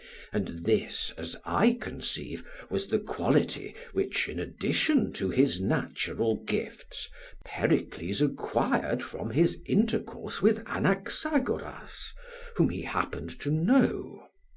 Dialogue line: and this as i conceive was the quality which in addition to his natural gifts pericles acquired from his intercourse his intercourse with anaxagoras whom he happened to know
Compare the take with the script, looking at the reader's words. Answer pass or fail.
fail